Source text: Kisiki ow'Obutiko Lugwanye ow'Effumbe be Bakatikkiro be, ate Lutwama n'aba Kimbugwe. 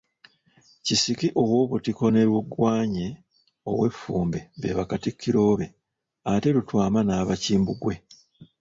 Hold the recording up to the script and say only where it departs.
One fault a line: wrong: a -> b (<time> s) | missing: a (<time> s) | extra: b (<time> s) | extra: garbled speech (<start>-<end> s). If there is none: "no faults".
extra: ne (2.1 s)